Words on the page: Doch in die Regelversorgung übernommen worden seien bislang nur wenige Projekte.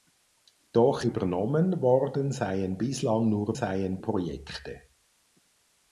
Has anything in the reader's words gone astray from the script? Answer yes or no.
yes